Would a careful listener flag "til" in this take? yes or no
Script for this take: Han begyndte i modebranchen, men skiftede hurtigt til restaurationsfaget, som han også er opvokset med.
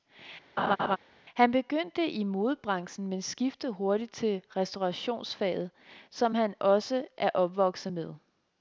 no